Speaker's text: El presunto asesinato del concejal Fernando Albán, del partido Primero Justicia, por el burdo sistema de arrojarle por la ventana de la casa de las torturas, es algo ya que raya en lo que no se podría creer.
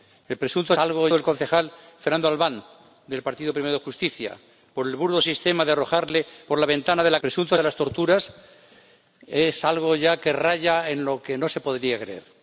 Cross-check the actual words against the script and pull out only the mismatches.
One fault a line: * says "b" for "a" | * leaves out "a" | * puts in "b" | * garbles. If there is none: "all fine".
* says "algo" for "asesinato"
* says "presunto" for "casa"